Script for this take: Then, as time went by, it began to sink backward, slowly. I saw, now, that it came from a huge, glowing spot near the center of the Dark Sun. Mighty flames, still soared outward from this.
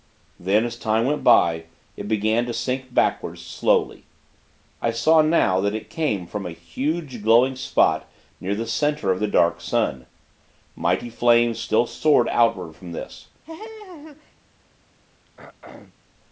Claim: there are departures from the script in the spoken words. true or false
false